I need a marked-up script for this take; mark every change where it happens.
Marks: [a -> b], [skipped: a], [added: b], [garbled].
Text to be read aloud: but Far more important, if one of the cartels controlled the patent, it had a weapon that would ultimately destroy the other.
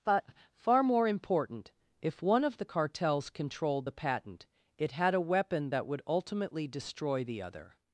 but Far more important, if one of the cartels controlled the patent, it had a weapon that would ultimately destroy the other.